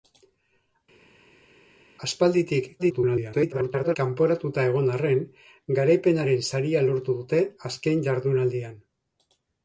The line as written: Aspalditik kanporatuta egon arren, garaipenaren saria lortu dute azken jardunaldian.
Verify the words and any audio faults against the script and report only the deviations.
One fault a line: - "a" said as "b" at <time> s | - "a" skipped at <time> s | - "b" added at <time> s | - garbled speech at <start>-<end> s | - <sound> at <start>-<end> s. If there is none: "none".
- garbled speech at 2.8-4.0 s